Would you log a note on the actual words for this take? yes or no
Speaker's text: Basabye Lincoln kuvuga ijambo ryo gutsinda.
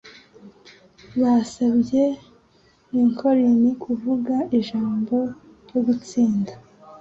no